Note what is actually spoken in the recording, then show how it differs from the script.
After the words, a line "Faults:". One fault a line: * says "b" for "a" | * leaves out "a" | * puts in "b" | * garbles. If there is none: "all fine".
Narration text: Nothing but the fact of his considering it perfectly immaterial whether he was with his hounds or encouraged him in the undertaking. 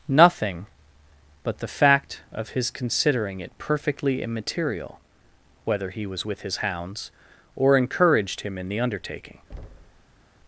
Nothing but the fact of his considering it perfectly immaterial whether he was with his hounds or encouraged him in the undertaking.
Faults:
all fine